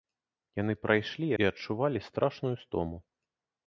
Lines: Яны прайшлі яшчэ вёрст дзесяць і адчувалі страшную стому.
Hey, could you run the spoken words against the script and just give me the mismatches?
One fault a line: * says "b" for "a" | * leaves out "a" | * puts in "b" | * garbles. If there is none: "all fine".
* leaves out "яшчэ вёрст дзесяць"